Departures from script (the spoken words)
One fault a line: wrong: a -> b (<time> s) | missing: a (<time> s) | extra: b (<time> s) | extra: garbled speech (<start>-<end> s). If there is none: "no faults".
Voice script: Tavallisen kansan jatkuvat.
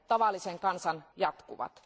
no faults